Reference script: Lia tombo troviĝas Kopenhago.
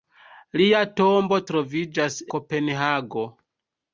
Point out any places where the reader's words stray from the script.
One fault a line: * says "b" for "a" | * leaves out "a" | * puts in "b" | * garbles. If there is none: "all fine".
all fine